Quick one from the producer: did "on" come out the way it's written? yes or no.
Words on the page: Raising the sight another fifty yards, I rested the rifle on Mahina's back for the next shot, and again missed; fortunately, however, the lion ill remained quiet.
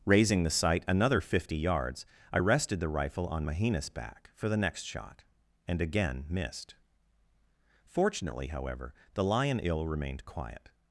yes